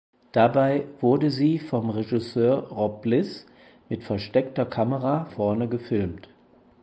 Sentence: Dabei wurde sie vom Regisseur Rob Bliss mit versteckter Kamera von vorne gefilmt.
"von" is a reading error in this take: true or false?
true